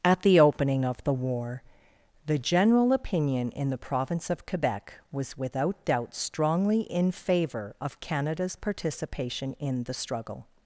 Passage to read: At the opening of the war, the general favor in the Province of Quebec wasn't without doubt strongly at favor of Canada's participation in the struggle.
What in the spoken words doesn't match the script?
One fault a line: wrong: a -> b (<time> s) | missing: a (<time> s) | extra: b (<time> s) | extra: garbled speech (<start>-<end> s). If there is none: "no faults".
wrong: favor -> opinion (2.9 s)
wrong: wasn't -> was (5.1 s)
wrong: at -> in (6.8 s)